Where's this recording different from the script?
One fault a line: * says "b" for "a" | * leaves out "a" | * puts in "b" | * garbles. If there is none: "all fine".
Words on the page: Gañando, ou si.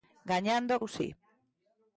all fine